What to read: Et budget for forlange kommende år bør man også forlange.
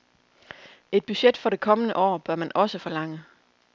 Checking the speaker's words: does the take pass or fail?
fail